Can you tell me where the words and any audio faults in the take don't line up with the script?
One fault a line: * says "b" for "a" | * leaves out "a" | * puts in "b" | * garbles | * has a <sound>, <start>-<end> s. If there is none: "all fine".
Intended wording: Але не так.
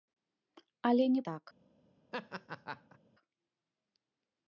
* has a laugh, 2.1-3.0 s